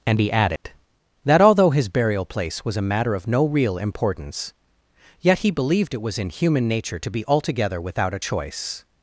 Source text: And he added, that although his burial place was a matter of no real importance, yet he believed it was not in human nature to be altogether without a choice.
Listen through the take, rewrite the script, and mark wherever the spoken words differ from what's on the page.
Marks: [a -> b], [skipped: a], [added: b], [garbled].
And he added, that although his burial place was a matter of no real importance, yet he believed it was [skipped: not] in human nature to be altogether without a choice.